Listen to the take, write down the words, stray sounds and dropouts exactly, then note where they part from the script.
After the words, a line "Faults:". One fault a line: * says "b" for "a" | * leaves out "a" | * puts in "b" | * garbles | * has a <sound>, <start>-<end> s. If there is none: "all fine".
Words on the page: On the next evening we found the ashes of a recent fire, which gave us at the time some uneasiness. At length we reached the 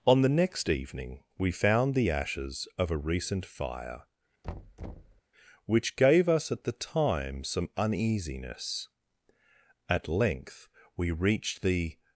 On the next evening we found the ashes of a recent fire, which gave us at the time some uneasiness. At length we reached the
Faults:
* has a thud, 4.4-5.2 s